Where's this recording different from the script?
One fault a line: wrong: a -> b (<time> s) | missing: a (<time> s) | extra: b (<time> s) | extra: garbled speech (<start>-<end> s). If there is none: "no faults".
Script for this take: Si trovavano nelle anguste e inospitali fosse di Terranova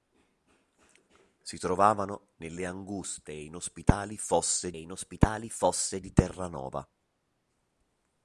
extra: e inospitali fosse (4.7 s)